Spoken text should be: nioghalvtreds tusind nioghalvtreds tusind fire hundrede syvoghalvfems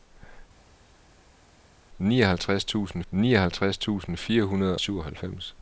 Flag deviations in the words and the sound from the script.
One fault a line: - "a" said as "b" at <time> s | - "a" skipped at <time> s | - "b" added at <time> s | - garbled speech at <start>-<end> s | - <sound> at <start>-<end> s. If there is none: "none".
none